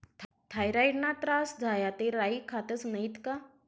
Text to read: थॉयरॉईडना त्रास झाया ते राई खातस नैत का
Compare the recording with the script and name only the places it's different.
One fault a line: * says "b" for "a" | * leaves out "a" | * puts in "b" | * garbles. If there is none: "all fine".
all fine